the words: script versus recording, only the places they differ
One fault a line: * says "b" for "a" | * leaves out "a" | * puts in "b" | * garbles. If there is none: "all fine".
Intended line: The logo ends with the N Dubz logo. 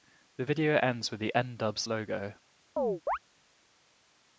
* says "video" for "logo"